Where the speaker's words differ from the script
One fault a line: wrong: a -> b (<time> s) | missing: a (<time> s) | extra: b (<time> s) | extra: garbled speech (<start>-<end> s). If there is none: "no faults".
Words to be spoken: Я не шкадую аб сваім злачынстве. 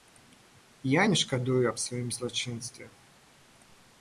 no faults